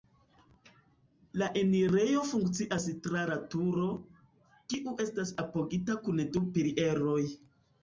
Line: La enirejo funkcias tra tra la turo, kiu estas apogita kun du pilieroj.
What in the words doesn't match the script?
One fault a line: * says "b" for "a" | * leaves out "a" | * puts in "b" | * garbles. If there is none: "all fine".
* leaves out "tra"